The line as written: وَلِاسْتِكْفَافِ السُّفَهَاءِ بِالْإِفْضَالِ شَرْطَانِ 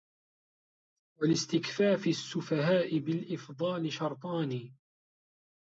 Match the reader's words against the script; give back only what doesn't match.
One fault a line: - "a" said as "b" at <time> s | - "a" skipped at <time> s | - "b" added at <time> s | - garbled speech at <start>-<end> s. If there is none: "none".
none